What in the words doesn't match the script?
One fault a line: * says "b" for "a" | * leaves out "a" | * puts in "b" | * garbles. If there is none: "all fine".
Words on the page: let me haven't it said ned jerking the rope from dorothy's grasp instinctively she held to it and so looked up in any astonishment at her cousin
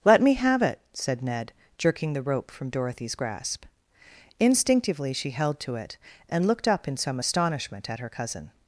* says "have" for "haven't"
* leaves out "so"
* says "some" for "any"